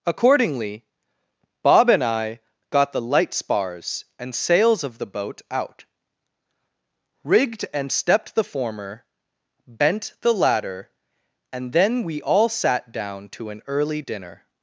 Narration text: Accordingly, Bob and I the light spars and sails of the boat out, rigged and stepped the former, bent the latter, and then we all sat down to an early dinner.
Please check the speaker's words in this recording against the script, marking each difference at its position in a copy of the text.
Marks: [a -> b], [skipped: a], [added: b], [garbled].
Accordingly, Bob and I [added: got] the light spars and sails of the boat out, rigged and stepped the former, bent the latter, and then we all sat down to an early dinner.